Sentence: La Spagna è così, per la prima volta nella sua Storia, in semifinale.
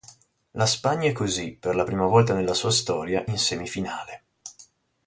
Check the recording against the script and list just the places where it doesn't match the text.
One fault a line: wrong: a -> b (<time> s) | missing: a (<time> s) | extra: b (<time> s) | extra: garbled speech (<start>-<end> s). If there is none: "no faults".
no faults